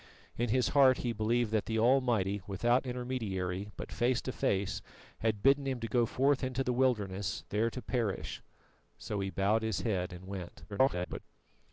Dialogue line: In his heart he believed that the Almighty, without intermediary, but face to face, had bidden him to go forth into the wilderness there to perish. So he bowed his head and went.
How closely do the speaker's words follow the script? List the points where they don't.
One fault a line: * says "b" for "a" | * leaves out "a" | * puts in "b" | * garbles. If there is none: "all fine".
* garbles